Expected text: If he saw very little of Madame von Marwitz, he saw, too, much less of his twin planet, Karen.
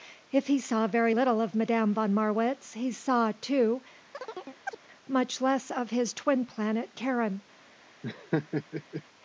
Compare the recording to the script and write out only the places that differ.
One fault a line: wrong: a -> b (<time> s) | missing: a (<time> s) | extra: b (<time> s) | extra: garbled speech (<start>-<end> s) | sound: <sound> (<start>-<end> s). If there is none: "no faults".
sound: chirp (4.1-4.8 s)
sound: laugh (8.0-9.0 s)